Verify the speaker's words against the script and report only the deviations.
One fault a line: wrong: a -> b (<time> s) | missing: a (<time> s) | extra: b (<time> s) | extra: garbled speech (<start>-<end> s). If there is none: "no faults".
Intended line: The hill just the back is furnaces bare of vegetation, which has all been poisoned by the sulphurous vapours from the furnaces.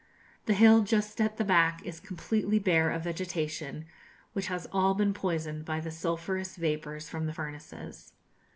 extra: at (1.2 s)
wrong: furnaces -> completely (2.0 s)